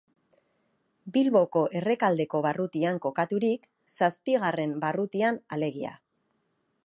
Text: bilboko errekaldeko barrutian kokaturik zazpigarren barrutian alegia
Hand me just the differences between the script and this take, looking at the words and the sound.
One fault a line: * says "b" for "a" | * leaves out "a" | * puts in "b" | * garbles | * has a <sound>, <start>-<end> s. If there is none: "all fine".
all fine